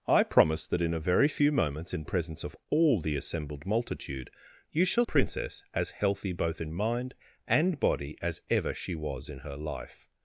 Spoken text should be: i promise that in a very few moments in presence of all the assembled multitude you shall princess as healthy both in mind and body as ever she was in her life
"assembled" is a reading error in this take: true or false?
false